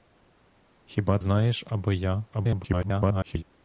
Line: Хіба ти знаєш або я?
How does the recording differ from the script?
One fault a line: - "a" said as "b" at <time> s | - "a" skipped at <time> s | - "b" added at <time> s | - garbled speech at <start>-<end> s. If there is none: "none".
- "ти" skipped at 1.2 s
- garbled speech at 2.3-3.4 s